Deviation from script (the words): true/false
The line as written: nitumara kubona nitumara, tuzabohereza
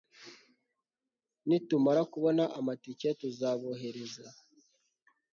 true